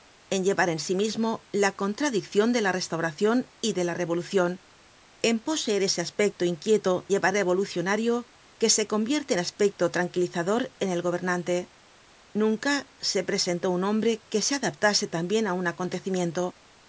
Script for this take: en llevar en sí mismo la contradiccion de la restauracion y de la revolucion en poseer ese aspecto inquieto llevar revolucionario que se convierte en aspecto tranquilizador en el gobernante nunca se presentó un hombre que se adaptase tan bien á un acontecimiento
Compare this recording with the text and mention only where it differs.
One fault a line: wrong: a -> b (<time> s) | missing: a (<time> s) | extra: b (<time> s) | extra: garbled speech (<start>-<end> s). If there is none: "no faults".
no faults